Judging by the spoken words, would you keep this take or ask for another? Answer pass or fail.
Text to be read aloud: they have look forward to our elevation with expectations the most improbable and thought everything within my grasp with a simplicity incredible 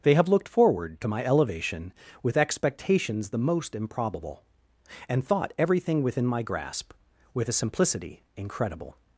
fail